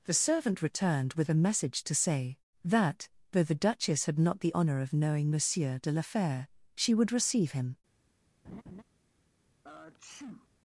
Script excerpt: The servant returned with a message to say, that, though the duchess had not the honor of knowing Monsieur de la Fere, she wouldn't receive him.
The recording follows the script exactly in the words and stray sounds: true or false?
false